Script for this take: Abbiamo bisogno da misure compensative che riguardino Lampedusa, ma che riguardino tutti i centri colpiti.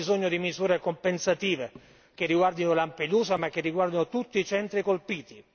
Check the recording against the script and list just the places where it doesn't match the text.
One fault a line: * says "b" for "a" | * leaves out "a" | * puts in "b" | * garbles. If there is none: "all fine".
* says "di" for "da"